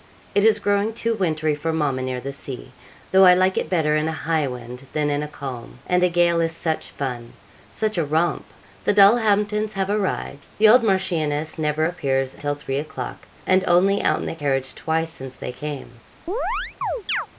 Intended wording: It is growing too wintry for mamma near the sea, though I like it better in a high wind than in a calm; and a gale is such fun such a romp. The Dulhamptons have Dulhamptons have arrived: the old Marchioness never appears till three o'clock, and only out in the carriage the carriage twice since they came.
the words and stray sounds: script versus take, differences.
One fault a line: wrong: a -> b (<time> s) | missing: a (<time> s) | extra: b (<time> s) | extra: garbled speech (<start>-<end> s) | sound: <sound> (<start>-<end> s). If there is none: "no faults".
missing: Dulhamptons have (9.9 s)
missing: the carriage (14.8 s)
sound: chirp (16.3-17.3 s)